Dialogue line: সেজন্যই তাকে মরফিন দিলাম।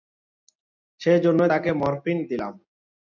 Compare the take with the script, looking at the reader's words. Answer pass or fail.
pass